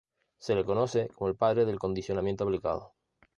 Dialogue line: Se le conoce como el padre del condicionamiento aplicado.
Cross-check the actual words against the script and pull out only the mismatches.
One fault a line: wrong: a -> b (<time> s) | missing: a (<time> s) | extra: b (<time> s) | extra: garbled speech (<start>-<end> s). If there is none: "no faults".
no faults